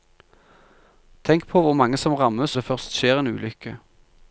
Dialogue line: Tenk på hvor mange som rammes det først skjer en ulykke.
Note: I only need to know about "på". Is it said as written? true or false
true